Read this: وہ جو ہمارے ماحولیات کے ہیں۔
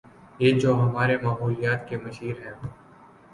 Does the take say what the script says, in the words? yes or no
no